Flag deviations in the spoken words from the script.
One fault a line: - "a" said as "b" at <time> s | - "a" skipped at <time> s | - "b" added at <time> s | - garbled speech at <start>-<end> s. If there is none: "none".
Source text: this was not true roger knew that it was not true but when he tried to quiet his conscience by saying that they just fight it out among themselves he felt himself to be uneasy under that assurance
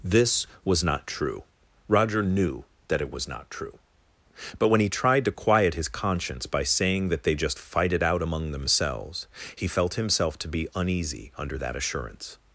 none